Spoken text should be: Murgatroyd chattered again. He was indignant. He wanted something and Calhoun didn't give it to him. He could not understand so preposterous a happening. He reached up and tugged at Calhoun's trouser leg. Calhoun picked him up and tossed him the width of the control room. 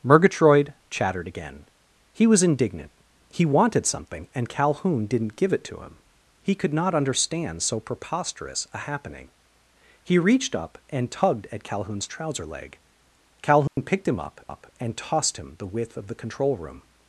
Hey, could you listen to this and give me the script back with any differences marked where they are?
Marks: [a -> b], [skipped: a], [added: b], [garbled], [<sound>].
Murgatroyd chattered again. He was indignant. He wanted something and Calhoun didn't give it to him. He could not understand so preposterous a happening. He reached up and tugged at Calhoun's trouser leg. Calhoun [dropout] picked him up [added: up] and tossed him the width of the control room.